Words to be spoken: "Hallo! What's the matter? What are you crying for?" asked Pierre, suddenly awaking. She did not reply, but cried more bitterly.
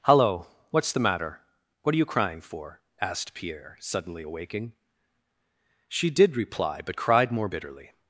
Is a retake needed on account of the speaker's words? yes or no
yes